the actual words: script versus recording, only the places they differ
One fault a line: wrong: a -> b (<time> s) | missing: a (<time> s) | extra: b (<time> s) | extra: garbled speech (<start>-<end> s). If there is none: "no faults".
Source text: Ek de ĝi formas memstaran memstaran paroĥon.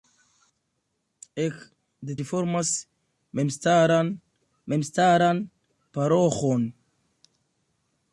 no faults